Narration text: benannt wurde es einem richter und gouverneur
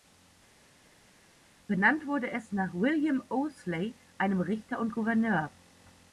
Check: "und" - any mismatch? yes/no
no